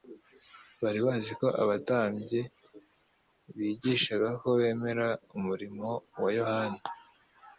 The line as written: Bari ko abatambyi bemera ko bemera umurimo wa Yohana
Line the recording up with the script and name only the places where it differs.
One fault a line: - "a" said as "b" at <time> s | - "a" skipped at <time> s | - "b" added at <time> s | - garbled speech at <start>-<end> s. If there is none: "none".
- "bazi" added at 1.1 s
- "bemera" said as "bigishaga" at 3.6 s